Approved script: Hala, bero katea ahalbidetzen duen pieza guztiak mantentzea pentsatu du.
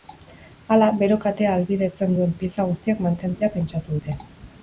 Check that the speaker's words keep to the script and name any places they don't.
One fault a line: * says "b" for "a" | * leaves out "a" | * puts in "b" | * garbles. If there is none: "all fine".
* says "dute" for "du"